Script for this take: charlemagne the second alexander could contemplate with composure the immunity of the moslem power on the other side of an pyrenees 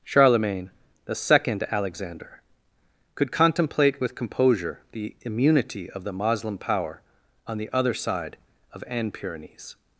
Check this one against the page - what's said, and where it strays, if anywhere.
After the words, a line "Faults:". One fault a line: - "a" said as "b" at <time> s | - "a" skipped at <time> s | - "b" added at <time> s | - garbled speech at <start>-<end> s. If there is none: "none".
charlemagne the second alexander could contemplate with composure the immunity of the moslem power on the other side of an pyrenees
Faults:
none